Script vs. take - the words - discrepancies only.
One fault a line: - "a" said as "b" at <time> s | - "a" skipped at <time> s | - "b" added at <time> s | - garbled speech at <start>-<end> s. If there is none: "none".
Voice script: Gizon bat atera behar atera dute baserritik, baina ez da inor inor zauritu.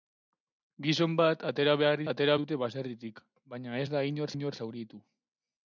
none